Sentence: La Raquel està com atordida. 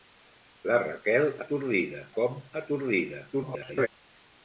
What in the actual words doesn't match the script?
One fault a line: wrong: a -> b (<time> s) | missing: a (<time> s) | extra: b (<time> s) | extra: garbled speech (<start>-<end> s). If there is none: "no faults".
wrong: està -> atordida (1.5 s)
extra: garbled speech (3.3-3.9 s)